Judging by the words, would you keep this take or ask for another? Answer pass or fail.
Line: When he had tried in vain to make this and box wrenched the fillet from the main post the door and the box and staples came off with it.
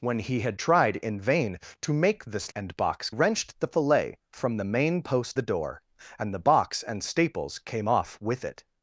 pass